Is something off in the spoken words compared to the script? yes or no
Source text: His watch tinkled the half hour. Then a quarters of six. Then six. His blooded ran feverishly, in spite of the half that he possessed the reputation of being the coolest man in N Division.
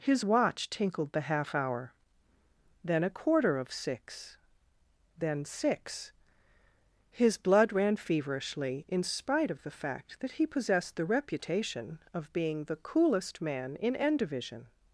yes